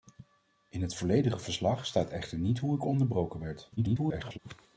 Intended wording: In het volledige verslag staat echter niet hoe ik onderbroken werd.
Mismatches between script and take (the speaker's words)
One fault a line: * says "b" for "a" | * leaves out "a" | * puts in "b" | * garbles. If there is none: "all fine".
* garbles